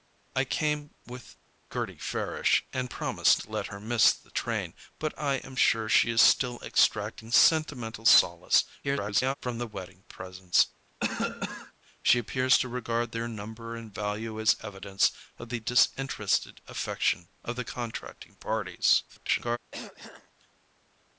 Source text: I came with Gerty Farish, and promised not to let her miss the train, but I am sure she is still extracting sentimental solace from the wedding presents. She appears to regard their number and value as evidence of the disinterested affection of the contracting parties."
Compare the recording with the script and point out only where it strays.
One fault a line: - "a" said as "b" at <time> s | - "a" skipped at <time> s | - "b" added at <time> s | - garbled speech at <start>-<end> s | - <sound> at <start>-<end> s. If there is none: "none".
- "not" skipped at 3.4 s
- garbled speech at 8.8-9.3 s
- cough at 11.0-11.7 s
- garbled speech at 19.1-19.6 s
- throat clearing at 19.7-20.3 s